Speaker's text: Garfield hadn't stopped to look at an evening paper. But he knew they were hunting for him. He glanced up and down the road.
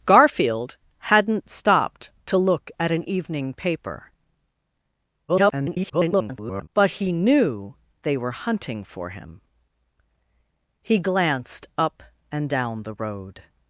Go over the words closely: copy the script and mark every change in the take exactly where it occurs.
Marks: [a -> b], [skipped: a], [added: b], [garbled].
Garfield hadn't stopped to look at an evening paper. [garbled] But he knew they were hunting for him. He glanced up and down the road.